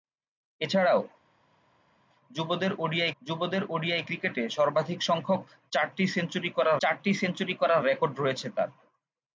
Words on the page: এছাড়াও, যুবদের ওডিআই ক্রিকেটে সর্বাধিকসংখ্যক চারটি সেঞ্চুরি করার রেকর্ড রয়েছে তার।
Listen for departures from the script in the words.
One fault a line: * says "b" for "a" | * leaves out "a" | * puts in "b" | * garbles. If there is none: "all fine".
* puts in "যুবদের ওডিআই"
* puts in "চারটি সেঞ্চুরি করার"